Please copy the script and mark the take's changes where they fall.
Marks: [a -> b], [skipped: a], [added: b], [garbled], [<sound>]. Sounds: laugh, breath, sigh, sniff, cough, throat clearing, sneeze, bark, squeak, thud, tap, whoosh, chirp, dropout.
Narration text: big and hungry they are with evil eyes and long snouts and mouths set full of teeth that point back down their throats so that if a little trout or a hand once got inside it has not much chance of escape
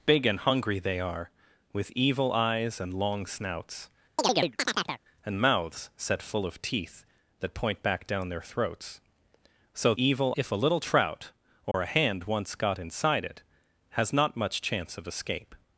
big and hungry they are with evil eyes and long snouts [chirp] and mouths set full of teeth that point back down their throats so [that -> evil] if a little trout or [dropout] a hand once got inside it has not much chance of escape